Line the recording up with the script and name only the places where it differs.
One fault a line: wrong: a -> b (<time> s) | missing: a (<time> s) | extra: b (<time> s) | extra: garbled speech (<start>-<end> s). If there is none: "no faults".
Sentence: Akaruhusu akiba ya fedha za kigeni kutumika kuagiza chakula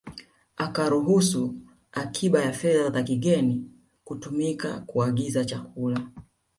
no faults